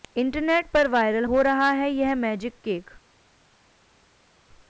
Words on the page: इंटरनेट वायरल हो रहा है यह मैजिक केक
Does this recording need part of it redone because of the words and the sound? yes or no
yes